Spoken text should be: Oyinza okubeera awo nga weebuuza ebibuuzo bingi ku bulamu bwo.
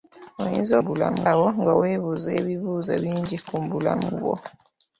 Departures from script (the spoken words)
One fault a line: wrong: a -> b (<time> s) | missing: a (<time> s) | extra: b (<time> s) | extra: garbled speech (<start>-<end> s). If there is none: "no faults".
wrong: okubeera -> bulamu (0.8 s)